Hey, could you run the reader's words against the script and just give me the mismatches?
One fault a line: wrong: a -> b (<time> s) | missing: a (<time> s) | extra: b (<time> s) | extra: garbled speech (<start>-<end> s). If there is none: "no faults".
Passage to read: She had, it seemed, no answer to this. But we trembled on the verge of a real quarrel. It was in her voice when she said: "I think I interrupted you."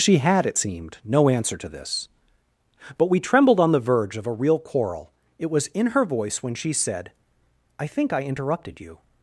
no faults